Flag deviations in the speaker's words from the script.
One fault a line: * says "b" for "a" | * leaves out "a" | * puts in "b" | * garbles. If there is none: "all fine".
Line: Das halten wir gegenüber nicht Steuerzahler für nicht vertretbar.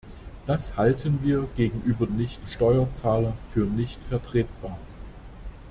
all fine